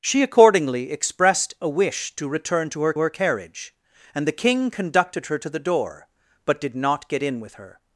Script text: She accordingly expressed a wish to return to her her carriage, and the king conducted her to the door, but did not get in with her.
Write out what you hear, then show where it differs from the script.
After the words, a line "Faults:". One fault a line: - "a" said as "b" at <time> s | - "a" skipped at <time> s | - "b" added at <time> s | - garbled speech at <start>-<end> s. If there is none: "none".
She accordingly expressed a wish to return to her her carriage, and the king conducted her to the door, but did not get in with her.
Faults:
none